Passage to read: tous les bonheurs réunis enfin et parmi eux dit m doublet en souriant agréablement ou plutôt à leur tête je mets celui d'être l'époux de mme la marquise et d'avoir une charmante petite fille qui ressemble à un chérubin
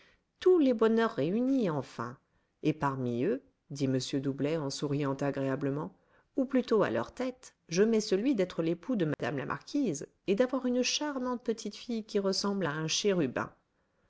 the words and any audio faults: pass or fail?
fail